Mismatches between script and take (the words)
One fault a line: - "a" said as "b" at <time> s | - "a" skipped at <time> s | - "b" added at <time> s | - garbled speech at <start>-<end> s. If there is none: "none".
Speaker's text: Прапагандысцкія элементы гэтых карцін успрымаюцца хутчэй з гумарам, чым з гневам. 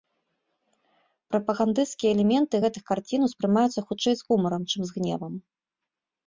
none